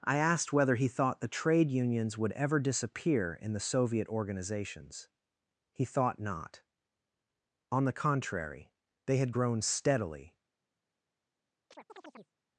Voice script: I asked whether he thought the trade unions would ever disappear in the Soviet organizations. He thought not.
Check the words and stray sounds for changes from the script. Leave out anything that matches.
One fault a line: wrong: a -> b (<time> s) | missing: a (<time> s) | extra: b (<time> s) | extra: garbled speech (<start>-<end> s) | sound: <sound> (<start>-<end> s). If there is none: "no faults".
extra: On the contrary they had grown steadily (7.7 s)
sound: chirp (11.7-12.3 s)